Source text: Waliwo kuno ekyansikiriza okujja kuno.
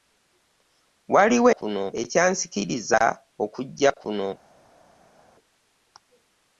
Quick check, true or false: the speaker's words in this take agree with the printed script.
true